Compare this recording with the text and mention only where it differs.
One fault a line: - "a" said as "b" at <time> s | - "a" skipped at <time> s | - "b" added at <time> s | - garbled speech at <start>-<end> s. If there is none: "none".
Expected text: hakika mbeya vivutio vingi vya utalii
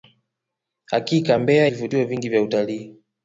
none